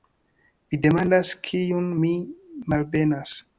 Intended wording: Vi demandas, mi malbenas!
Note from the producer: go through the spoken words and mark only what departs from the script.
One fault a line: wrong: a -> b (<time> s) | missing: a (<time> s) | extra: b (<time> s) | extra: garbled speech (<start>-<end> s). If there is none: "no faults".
extra: kiun (1.5 s)